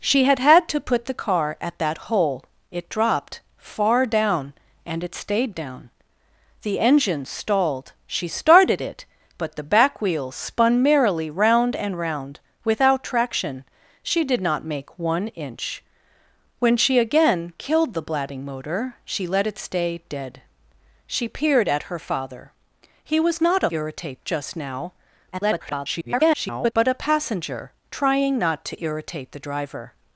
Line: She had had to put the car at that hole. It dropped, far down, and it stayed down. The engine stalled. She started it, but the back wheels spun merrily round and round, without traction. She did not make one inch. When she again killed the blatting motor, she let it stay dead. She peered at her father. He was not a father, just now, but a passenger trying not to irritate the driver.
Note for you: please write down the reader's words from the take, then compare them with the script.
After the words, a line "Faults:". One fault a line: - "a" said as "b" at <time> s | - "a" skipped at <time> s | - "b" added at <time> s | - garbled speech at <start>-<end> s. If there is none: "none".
She had had to put the car at that hole. It dropped, far down, and it stayed down. The engine stalled. She started it, but the back wheels spun merrily round and round, without traction. She did not make one inch. When she again killed the blatting motor, she let it stay dead. She peered at her father. He was not a irritate, just now, [garbled] but a passenger trying not to irritate the driver.
Faults:
- "father" said as "irritate" at 23.7 s
- garbled speech at 25.3-26.7 s